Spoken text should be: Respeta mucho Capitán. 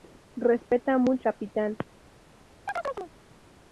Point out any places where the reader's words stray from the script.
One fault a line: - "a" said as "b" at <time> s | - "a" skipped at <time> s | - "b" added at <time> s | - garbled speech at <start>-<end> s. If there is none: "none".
none